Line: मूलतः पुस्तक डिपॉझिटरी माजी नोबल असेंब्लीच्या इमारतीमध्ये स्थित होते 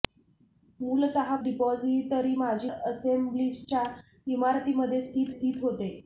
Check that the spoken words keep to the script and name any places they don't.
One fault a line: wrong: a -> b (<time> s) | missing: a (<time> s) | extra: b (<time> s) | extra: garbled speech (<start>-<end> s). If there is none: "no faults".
missing: पुस्तक (1.4 s)
missing: नोबल (2.7 s)
extra: स्थित (5.3 s)